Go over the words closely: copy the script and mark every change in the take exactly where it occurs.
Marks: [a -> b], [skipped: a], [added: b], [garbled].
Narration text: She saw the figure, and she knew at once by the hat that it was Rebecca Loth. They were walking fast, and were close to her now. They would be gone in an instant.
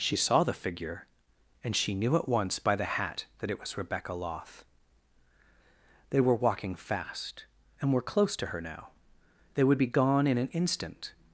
She saw the figure, and she knew at once by the hat that it was Rebecca Loth. They were walking fast, and were close to her now. They would be gone in an instant.